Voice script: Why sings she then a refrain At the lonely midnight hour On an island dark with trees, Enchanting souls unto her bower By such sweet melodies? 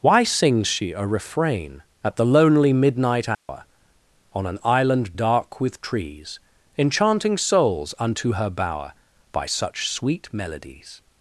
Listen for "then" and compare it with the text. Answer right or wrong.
wrong